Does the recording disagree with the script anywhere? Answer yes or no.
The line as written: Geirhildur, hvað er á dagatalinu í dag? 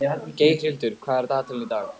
no